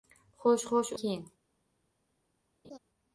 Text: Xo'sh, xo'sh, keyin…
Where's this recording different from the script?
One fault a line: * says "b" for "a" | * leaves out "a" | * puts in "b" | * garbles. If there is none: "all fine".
all fine